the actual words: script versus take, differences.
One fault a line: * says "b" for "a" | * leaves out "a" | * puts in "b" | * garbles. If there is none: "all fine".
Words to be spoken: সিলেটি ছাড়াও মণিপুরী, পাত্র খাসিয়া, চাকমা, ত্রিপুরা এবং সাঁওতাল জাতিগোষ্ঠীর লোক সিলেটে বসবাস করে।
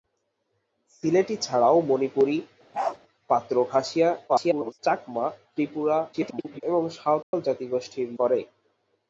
* garbles
* garbles
* leaves out "লোক সিলেটে বসবাস"